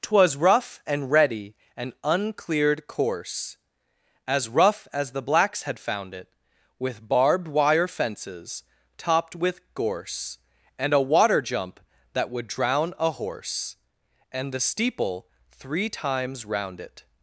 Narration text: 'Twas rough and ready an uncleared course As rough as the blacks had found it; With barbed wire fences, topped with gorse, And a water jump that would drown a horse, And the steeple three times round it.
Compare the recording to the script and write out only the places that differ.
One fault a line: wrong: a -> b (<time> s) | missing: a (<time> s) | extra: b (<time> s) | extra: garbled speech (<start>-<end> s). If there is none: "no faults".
no faults